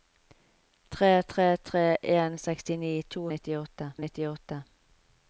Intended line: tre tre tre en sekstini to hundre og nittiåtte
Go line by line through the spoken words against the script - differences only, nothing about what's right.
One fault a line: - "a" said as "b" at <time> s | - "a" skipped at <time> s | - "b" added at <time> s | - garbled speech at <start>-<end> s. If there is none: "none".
- "hundre" said as "nittiåtte" at 3.3 s